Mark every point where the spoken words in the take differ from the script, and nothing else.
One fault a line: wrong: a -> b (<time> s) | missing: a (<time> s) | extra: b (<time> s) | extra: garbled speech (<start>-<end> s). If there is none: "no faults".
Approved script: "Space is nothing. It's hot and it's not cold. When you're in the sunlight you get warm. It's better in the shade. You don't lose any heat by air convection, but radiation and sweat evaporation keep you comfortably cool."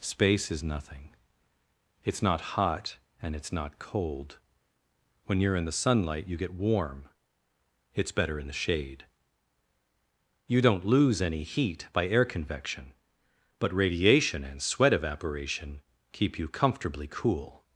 extra: not (2.2 s)